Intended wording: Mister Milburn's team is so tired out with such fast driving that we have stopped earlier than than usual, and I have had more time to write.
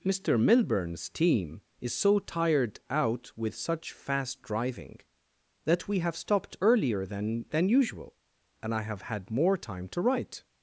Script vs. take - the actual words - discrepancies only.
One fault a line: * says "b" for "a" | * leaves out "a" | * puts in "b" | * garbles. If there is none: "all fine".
all fine